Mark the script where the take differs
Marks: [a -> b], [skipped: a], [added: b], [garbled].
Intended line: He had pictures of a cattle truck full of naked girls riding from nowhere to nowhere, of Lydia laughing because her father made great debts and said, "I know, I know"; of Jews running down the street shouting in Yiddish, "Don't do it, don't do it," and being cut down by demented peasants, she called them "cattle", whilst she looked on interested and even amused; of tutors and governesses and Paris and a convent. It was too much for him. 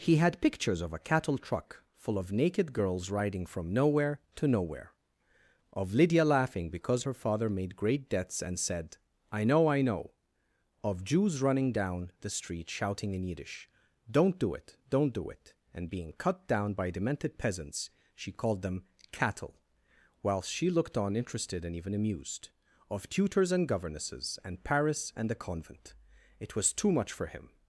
He had pictures of a cattle truck full of naked girls riding from nowhere to nowhere, of Lydia laughing because her father made great debts and said, "I know, I know"; of Jews running down the street shouting in Yiddish, "Don't do it, don't do it," and being cut down by demented peasants, she called them "cattle", whilst she looked on interested and even amused; of tutors and governesses and Paris and [a -> the] convent. It was too much for him.